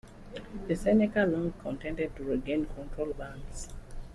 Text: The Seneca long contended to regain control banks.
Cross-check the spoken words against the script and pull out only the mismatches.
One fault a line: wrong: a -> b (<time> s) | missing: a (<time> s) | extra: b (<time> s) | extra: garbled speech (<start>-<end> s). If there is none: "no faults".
no faults